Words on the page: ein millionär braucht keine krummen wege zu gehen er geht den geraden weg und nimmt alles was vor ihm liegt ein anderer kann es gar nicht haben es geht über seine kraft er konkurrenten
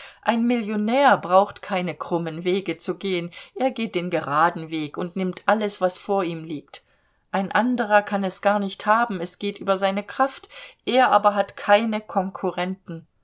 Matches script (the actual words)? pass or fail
fail